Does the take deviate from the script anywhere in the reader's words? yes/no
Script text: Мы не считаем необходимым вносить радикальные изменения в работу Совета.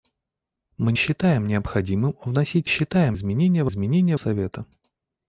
yes